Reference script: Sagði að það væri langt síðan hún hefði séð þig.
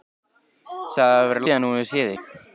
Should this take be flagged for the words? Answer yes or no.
yes